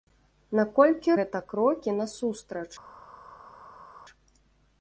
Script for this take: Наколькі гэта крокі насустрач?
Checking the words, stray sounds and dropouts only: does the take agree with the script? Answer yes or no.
yes